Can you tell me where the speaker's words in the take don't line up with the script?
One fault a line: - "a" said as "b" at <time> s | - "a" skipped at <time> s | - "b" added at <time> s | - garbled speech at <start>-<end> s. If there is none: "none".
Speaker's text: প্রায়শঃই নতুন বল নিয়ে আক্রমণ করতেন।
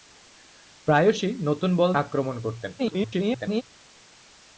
- "নিয়ে" skipped at 1.9 s
- garbled speech at 2.8-3.6 s